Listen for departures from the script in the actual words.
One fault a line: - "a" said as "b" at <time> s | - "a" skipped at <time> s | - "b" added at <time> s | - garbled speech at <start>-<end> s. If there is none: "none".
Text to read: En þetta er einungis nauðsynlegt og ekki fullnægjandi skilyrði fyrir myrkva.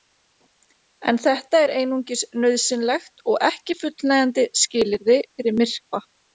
none